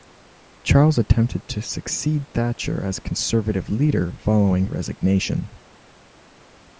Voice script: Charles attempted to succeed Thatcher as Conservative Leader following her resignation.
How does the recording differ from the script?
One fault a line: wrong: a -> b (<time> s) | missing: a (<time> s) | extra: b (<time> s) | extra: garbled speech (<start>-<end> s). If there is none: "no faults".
missing: her (4.7 s)